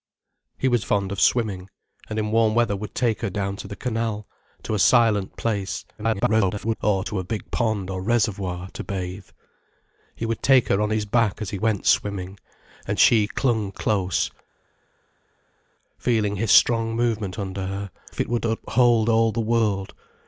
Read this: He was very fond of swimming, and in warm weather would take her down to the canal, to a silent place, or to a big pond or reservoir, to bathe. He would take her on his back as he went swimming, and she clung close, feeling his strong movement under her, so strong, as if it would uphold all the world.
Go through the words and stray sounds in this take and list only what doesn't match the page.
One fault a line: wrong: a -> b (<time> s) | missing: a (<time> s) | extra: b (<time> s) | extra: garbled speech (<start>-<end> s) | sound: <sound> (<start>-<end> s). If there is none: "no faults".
missing: very (0.8 s)
extra: garbled speech (6.0-6.8 s)
missing: so strong as (17.9 s)